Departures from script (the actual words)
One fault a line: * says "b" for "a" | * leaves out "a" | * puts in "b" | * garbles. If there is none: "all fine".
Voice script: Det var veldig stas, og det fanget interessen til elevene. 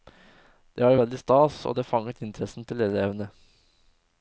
all fine